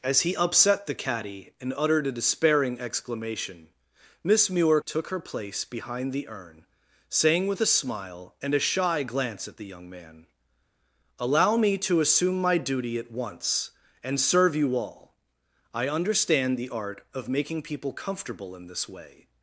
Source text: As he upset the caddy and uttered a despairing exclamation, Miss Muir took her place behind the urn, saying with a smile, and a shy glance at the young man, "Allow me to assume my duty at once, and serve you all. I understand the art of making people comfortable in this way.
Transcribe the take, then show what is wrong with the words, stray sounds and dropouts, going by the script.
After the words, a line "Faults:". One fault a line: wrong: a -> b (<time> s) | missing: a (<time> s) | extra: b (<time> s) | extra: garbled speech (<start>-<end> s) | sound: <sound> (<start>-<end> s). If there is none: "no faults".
As he upset the caddy and uttered a despairing exclamation, Miss Muir took her place behind the urn, saying with a smile, and a shy glance at the young man, "Allow me to assume my duty at once, and serve you all. I understand the art of making people comfortable in this way.
Faults:
no faults